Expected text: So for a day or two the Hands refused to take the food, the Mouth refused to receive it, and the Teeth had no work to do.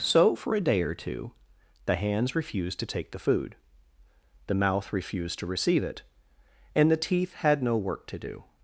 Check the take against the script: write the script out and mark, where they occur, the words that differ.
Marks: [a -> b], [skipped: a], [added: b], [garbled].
So for a day or two the Hands refused to take the food, the Mouth refused to receive it, and the Teeth had no work to do.